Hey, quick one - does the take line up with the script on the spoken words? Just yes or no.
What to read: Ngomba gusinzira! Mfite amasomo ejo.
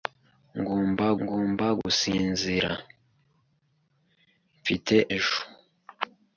no